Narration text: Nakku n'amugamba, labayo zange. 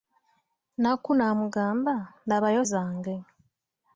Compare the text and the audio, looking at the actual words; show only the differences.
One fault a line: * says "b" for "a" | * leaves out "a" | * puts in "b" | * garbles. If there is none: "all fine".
all fine